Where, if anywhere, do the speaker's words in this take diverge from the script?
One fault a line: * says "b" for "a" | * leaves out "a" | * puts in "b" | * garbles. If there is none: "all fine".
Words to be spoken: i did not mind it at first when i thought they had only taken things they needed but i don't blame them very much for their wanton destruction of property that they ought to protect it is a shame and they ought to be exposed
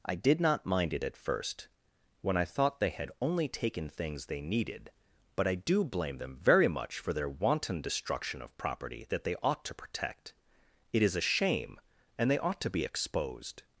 * says "do" for "don't"